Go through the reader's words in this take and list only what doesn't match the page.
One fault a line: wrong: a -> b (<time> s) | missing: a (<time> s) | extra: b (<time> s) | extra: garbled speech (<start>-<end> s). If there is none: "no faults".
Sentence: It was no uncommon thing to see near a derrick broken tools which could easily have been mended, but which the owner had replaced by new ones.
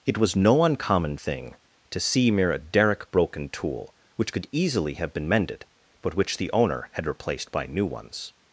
wrong: near -> mere (2.3 s)
wrong: tools -> tool (3.5 s)